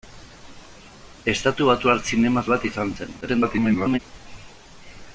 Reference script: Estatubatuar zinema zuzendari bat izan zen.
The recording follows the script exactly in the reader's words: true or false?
false